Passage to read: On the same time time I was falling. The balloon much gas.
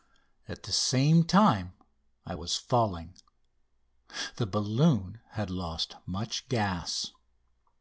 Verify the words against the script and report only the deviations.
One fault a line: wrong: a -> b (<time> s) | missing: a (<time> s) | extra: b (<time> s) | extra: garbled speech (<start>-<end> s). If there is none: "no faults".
wrong: On -> At (0.5 s)
missing: time (1.7 s)
extra: had lost (5.3 s)